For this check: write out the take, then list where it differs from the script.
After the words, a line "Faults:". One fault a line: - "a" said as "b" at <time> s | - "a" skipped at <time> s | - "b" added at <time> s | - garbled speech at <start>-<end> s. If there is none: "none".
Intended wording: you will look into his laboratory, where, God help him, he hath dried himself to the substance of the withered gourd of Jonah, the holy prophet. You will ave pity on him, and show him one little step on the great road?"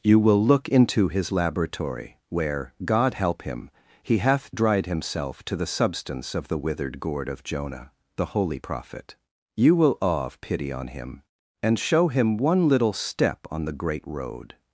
you will look into his laboratory, where, God help him, he hath dried himself to the substance of the withered gourd of Jonah, the holy prophet. You will awe of pity on him, and show him one little step on the great road?"
Faults:
- "ave" said as "awe of" at 10.0 s